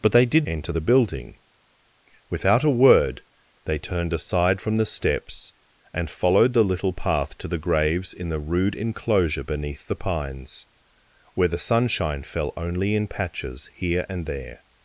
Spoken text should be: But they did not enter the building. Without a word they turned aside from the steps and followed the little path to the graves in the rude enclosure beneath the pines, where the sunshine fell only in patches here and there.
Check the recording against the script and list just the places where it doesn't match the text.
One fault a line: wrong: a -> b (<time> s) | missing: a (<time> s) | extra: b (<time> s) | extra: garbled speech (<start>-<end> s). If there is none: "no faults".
missing: not (0.5 s)